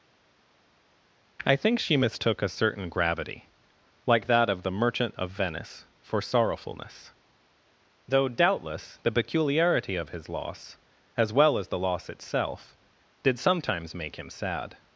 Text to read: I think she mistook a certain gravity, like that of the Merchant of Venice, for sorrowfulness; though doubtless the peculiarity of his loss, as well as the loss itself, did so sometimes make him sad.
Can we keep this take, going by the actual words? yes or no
no